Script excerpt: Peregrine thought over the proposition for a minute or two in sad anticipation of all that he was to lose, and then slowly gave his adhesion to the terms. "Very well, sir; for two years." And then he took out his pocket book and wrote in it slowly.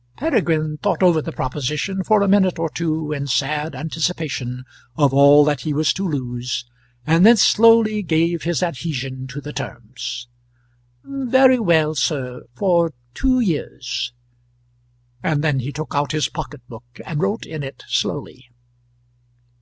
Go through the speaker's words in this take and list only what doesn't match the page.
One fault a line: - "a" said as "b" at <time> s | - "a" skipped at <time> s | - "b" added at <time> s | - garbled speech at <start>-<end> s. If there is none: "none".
none